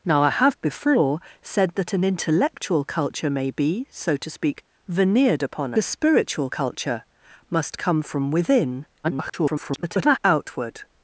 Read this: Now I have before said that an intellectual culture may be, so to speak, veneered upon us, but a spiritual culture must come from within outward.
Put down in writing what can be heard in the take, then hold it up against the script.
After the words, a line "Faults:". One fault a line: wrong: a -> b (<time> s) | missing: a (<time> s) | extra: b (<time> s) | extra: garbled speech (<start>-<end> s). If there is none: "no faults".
Now I have before said that an intellectual culture may be, so to speak, veneered upon a spiritual culture must come from within [garbled] outward.
Faults:
missing: us but (5.7 s)
extra: garbled speech (9.0-10.2 s)